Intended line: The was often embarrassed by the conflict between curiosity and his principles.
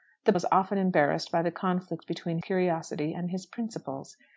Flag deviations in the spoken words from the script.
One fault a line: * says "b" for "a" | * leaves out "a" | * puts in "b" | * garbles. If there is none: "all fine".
all fine